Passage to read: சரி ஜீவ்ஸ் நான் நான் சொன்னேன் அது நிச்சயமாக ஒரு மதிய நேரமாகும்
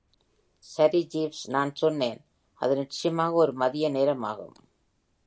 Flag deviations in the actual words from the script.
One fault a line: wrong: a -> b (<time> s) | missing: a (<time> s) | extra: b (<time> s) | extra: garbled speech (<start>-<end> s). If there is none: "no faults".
missing: நான் (1.7 s)